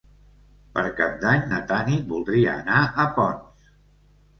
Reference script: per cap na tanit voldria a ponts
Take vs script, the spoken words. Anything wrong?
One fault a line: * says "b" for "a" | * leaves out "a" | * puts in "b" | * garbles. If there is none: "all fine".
* puts in "d'any"
* puts in "anar"